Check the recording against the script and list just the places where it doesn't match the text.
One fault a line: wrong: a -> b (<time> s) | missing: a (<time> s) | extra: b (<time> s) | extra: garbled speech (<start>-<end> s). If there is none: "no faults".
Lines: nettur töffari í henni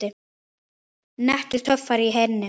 no faults